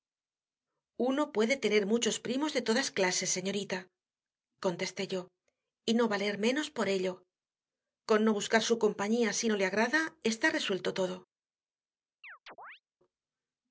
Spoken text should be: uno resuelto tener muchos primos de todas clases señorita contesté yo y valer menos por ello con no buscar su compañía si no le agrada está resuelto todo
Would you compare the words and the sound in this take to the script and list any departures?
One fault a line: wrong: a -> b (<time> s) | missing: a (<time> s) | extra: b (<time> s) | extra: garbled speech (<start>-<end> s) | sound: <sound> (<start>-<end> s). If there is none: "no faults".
wrong: resuelto -> puede (1.3 s)
extra: no (5.9 s)
sound: chirp (12.2-12.8 s)